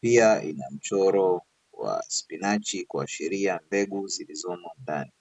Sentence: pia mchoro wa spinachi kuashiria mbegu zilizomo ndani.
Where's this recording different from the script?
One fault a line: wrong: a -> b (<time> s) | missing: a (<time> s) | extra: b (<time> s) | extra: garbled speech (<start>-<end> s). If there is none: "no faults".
extra: ina (0.4 s)